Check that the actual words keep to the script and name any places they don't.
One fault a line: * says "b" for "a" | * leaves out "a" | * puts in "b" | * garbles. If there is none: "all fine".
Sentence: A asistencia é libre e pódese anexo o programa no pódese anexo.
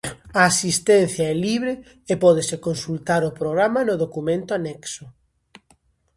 * says "consultar" for "anexo"
* says "documento" for "pódese"